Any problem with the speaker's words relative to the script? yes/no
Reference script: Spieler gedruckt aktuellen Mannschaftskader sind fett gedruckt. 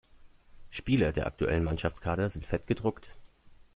yes